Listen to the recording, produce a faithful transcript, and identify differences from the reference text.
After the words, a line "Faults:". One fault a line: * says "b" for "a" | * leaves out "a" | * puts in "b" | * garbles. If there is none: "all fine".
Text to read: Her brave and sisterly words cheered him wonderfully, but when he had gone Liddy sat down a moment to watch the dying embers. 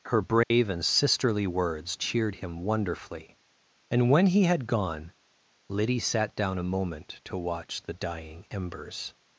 Her brave and sisterly words cheered him wonderfully, and when he had gone Liddy sat down a moment to watch the dying embers.
Faults:
* says "and" for "but"